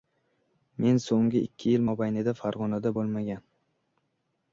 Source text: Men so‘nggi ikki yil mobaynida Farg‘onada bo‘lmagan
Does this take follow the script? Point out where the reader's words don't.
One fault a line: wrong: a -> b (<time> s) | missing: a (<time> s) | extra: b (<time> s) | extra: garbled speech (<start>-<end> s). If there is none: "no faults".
no faults